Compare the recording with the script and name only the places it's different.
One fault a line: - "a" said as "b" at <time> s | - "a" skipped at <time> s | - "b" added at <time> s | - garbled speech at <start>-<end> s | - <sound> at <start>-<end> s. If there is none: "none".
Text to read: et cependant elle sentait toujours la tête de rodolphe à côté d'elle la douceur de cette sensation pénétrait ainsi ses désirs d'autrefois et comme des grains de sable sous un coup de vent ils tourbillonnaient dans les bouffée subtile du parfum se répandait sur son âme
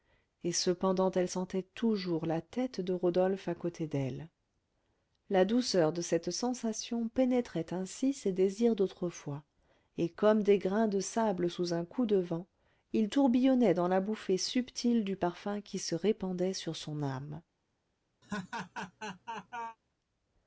- "les" said as "la" at 13.9 s
- "qui" added at 15.6 s
- laugh at 18.2-19.8 s